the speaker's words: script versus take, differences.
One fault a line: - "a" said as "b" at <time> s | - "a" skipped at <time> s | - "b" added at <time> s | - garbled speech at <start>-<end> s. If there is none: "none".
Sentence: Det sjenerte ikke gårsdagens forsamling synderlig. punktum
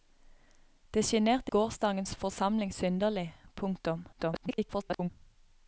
- "ikke" skipped at 1.5 s
- garbled speech at 4.1-5.1 s